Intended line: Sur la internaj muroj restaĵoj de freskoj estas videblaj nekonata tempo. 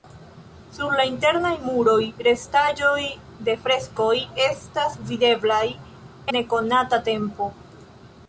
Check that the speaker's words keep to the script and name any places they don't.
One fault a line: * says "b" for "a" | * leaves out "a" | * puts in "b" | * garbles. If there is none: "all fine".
all fine